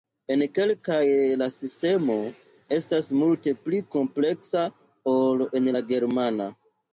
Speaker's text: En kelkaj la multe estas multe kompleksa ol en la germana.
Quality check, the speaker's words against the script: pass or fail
fail